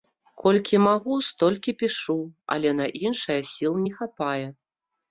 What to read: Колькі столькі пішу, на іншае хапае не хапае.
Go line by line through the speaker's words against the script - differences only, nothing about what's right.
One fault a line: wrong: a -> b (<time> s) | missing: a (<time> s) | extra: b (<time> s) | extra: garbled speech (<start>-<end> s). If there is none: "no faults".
extra: магу (0.8 s)
extra: але (2.6 s)
wrong: хапае -> сіл (3.5 s)